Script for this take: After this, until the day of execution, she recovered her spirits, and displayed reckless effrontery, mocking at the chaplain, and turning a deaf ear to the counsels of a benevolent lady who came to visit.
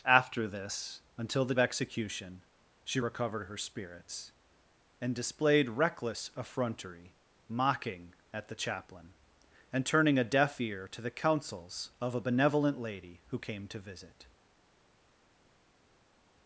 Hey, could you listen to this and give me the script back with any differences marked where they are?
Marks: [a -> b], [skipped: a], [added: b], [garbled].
After this, until the [skipped: day of] execution, she recovered her spirits, and displayed reckless effrontery, mocking at the chaplain, and turning a deaf ear to the counsels of a benevolent lady who came to visit.